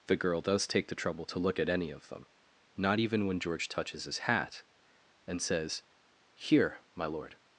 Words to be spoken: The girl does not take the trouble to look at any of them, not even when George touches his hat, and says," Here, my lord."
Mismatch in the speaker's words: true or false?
true